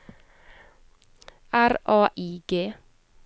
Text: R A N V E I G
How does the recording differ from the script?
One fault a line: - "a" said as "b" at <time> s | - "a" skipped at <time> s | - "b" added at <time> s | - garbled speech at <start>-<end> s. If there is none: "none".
- "N V E" skipped at 2.1 s